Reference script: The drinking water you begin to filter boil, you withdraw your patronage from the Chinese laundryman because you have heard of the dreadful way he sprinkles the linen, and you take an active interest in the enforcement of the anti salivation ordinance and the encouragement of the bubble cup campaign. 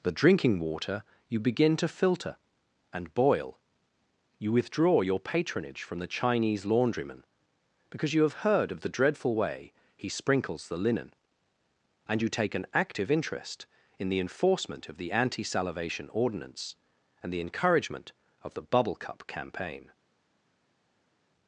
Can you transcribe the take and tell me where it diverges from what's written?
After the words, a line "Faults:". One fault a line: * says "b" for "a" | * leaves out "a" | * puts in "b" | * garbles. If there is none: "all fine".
The drinking water you begin to filter and boil, you withdraw your patronage from the Chinese laundryman because you have heard of the dreadful way he sprinkles the linen, and you take an active interest in the enforcement of the anti salivation ordinance and the encouragement of the bubble cup campaign.
Faults:
* puts in "and"